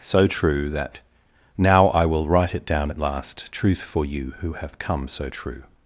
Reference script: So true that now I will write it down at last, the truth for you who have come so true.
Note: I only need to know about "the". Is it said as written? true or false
false